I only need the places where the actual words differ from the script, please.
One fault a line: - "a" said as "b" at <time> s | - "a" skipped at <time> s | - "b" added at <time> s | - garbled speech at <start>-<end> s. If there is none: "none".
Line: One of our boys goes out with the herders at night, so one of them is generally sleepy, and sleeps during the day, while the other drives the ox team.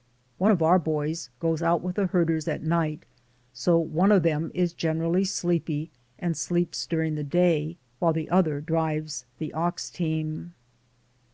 none